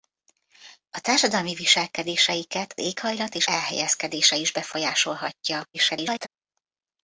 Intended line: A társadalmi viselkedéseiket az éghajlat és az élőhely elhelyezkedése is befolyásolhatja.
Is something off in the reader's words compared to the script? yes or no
yes